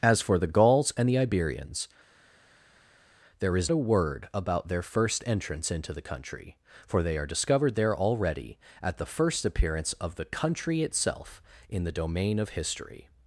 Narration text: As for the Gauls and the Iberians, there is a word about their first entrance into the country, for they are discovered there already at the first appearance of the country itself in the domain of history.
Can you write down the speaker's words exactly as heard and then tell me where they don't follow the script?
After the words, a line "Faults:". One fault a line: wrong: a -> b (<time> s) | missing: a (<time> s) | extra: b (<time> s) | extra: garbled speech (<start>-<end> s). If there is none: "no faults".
As for the Gauls and the Iberians, there is a word about their first entrance into the country, for they are discovered there already at the first appearance of the country itself in the domain of history.
Faults:
no faults